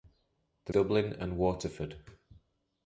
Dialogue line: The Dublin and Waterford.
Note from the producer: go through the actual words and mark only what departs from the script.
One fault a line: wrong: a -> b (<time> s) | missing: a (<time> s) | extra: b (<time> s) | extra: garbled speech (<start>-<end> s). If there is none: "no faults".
no faults